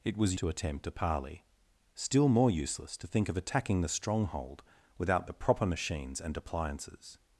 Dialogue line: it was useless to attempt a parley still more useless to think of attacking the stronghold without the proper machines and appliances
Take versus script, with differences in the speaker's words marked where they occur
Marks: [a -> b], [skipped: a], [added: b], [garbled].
it was [skipped: useless] to attempt a parley still more useless to think of attacking the stronghold without the proper machines and appliances